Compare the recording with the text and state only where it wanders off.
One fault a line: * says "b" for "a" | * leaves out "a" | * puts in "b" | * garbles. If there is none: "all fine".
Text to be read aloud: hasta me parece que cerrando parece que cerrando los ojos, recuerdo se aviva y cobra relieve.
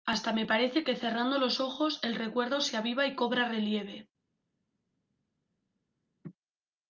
* leaves out "parece que cerrando"
* puts in "el"